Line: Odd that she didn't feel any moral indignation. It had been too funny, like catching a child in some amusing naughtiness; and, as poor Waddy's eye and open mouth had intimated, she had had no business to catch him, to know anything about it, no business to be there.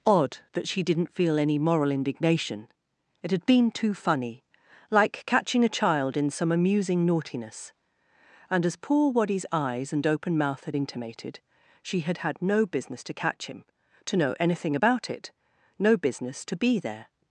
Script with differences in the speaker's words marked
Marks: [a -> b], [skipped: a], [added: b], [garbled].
Odd that she didn't feel any moral indignation. It had been too funny, like catching a child in some amusing naughtiness; and, as poor Waddy's [eye -> eyes] and open mouth had intimated, she had had no business to catch him, to know anything about it, no business to be there.